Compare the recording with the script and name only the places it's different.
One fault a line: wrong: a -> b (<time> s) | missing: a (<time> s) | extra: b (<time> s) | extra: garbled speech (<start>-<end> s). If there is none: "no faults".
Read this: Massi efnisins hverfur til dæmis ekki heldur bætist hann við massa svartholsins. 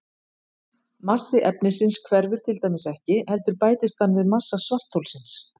no faults